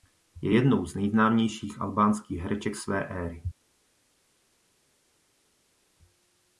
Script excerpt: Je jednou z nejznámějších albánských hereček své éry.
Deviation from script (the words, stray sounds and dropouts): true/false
false